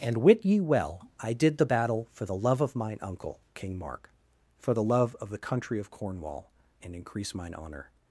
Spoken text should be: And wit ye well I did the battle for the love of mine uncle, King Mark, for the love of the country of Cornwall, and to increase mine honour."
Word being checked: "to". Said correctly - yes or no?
no